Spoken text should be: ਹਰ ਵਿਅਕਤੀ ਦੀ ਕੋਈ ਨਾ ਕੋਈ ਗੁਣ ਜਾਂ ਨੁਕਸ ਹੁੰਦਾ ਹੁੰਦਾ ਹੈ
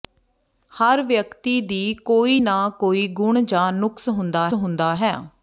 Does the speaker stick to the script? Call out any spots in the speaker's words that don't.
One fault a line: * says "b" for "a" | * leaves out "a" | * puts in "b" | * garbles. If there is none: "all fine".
all fine